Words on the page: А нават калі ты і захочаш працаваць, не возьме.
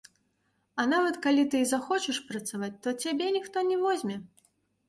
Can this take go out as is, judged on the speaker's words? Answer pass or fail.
fail